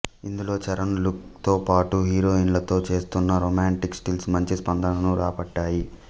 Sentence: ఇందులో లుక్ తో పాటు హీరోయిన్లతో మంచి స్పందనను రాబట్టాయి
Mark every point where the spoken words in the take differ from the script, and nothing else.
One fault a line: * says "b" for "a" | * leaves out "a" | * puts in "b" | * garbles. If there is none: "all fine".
* puts in "చరణ్"
* puts in "చేస్తున్న రొమాంటిక్ స్టిల్స్"